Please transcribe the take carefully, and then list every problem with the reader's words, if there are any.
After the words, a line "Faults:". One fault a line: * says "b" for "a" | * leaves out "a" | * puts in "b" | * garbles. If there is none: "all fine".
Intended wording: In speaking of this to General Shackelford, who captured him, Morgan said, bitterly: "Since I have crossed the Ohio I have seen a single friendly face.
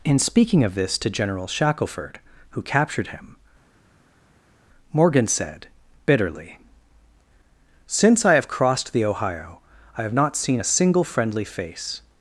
In speaking of this to General Shackelford, who captured him, Morgan said, bitterly: "Since I have crossed the Ohio I have not seen a single friendly face.
Faults:
* puts in "not"